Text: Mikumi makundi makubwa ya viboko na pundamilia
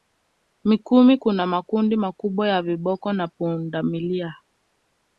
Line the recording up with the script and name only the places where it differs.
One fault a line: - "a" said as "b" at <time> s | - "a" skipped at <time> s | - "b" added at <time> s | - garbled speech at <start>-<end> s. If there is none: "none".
- "kuna" added at 1.2 s